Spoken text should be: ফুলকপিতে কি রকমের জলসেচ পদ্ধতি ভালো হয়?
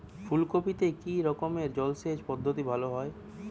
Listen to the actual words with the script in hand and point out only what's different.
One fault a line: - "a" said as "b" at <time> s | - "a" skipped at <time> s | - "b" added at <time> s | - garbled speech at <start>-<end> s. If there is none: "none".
none